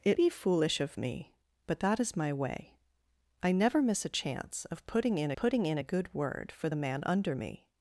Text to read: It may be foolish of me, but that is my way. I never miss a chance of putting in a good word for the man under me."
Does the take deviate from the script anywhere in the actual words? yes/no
yes